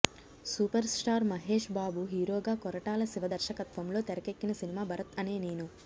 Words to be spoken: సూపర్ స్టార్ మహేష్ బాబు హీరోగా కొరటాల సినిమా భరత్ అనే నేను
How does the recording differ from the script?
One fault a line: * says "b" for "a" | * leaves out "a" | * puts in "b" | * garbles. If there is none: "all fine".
* puts in "శివ దర్శకత్వంలో తెరకెక్కిన"